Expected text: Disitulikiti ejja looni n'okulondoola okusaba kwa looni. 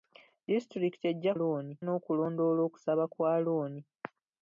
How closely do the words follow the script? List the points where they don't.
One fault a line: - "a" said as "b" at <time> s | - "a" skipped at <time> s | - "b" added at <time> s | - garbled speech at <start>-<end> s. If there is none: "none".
none